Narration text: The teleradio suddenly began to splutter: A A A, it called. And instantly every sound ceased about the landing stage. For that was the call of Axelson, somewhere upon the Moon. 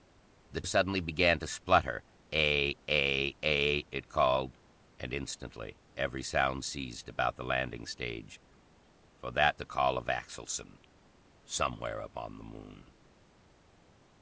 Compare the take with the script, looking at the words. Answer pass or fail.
fail